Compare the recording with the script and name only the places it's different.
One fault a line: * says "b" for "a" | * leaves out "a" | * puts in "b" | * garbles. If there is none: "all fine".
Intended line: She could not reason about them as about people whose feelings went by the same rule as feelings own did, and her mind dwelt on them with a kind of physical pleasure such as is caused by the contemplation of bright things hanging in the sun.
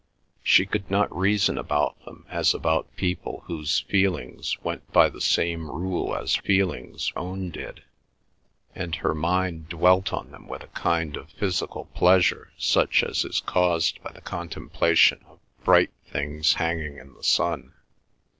all fine